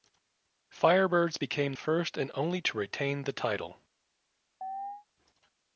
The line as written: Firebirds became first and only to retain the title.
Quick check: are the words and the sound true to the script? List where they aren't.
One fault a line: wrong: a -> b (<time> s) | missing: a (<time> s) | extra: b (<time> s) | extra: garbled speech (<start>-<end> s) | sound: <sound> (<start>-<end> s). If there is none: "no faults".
sound: chirp (4.6-5.1 s)